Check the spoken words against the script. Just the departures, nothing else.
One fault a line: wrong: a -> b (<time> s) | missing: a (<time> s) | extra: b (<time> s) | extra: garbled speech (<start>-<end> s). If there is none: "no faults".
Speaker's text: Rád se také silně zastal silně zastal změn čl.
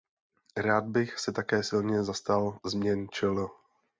extra: bych (0.8 s)
missing: silně zastal (2.6 s)